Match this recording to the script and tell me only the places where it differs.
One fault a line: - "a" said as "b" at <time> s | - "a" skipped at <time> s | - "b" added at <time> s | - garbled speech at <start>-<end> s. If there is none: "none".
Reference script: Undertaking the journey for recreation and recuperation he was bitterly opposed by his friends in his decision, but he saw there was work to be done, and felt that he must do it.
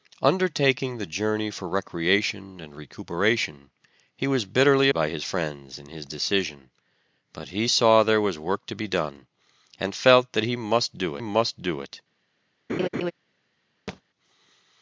- "opposed" skipped at 4.9 s
- "must do" added at 11.2 s